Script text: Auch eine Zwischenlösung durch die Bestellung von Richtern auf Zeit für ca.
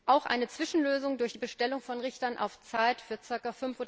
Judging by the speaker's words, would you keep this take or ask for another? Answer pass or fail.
pass